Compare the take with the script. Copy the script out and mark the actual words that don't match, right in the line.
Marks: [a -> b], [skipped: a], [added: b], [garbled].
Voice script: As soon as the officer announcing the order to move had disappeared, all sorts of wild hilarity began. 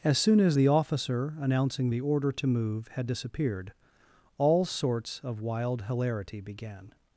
As soon as the officer announcing the order to move had disappeared, all sorts of wild hilarity began.